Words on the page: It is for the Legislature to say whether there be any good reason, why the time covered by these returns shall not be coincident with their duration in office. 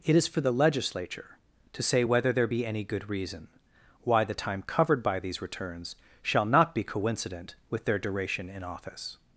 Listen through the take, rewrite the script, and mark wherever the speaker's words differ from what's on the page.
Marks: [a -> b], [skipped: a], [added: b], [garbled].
It is for the Legislature to say whether there be any good reason, why the time covered by these returns shall not be coincident with their duration in office.